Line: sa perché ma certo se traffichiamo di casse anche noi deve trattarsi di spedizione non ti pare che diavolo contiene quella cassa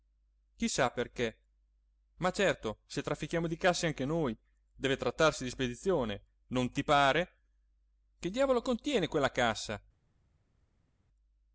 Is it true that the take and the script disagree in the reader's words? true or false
false